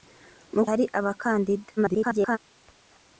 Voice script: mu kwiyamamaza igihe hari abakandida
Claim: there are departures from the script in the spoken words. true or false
true